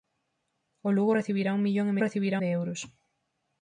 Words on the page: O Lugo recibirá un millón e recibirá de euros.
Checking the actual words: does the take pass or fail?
pass